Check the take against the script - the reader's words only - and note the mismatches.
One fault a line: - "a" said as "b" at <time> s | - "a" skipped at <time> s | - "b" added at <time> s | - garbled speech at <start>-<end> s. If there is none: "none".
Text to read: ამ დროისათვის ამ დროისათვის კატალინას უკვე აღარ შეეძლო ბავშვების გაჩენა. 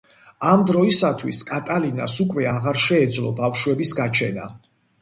- "ამ დროისათვის" skipped at 1.4 s